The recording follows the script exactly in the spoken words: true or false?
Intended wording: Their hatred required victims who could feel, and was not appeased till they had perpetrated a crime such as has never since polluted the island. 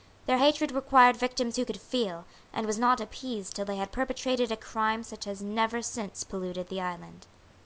true